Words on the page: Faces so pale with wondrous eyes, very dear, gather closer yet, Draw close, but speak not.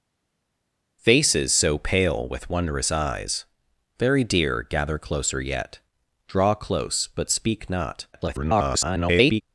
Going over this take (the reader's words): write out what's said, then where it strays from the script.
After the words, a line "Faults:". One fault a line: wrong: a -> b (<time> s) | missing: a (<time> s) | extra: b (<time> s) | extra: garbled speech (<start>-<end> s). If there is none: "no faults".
Faces so pale with wondrous eyes, very dear, gather closer yet, Draw close, but speak not. [garbled]
Faults:
extra: garbled speech (8.1-9.4 s)